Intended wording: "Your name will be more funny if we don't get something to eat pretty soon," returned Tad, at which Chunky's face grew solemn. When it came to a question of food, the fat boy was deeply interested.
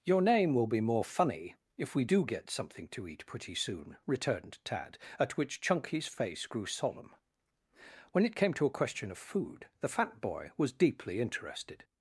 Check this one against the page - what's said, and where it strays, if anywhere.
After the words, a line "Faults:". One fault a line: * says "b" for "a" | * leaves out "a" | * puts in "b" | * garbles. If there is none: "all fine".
"Your name will be more funny if we do get something to eat pretty soon," returned Tad, at which Chunky's face grew solemn. When it came to a question of food, the fat boy was deeply interested.
Faults:
* says "do" for "don't"